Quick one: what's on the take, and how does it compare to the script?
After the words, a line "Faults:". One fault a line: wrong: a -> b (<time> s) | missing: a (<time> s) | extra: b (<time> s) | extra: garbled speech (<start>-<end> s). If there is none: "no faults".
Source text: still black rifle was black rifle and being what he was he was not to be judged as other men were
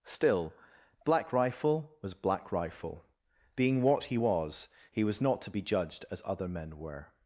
still black rifle was black rifle being what he was he was not to be judged as other men were
Faults:
missing: and (3.0 s)